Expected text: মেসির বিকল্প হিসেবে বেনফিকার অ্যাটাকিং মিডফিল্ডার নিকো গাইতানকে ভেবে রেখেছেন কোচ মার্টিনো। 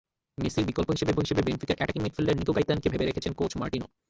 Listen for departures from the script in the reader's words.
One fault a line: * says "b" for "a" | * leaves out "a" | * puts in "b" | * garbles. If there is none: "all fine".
* puts in "হিসেবে"